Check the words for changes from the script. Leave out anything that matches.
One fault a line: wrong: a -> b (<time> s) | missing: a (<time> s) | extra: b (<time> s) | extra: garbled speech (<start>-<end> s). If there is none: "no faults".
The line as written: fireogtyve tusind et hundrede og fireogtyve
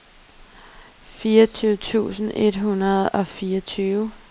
no faults